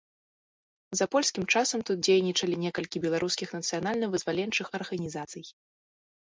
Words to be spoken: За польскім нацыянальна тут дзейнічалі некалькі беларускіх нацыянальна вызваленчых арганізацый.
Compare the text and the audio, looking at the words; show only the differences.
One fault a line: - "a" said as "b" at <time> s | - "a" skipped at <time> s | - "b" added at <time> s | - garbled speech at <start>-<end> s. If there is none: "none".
- "нацыянальна" said as "часам" at 1.6 s